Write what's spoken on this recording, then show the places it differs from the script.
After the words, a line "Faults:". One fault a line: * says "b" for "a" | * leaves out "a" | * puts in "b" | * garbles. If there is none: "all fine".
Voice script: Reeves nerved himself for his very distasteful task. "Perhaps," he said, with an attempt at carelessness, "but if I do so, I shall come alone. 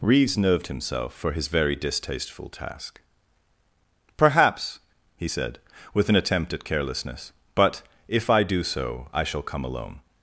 Reeves nerved himself for his very distasteful task. "Perhaps," he said, with an attempt at carelessness, "but if I do so, I shall come alone.
Faults:
all fine